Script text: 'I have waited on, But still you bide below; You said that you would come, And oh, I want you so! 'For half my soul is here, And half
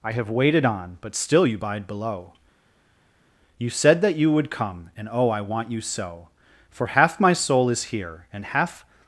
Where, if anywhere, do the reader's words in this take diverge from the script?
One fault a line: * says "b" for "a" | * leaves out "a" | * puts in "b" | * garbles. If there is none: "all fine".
all fine